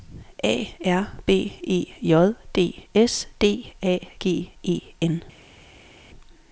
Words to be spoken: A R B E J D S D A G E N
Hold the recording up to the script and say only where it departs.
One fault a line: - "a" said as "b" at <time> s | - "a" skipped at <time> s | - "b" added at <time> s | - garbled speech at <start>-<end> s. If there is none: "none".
none